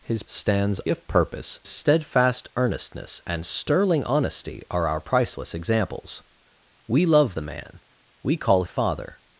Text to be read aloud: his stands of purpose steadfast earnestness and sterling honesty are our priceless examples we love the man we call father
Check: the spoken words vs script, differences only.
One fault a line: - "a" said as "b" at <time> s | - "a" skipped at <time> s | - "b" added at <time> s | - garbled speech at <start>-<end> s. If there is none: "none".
none